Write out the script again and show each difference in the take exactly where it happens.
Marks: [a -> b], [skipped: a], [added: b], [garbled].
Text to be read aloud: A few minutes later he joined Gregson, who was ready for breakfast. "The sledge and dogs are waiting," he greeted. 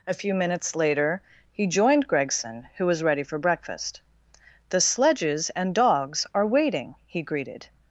A few minutes later he joined Gregson, who was ready for breakfast. "The [sledge -> sledges] and dogs are waiting," he greeted.